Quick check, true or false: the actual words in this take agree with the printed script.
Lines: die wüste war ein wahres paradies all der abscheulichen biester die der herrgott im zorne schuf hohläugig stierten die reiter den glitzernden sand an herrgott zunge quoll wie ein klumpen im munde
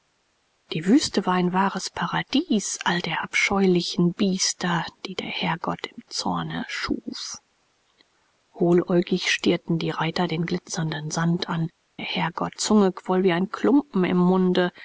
true